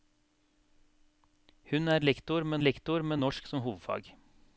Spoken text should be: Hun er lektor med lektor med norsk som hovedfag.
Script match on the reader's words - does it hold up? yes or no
yes